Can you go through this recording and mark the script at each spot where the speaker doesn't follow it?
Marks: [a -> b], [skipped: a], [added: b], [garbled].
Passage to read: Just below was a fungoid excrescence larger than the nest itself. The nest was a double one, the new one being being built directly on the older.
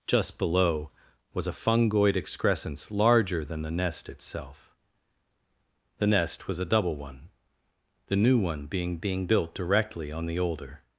Just below was a fungoid excrescence larger than the nest itself. The nest was a double one, the new one being being built directly on the older.